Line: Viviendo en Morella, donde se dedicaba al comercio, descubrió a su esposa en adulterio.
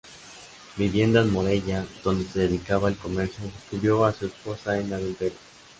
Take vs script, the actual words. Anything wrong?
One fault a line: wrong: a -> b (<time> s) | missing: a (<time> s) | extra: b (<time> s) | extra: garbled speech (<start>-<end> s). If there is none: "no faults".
no faults